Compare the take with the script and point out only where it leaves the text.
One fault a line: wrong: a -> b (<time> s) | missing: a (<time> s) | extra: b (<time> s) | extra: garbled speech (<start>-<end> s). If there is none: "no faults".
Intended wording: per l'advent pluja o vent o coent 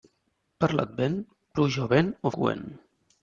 no faults